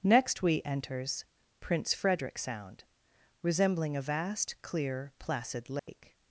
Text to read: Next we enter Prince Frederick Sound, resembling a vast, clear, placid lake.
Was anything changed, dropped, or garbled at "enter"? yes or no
yes